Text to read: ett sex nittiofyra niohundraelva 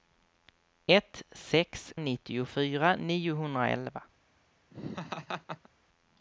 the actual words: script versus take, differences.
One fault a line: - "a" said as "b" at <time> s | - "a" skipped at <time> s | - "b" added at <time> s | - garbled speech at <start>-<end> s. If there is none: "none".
none